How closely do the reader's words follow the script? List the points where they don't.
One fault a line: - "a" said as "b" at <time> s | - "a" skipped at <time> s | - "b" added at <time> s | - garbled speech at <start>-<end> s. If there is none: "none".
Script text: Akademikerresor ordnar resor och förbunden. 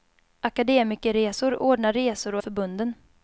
none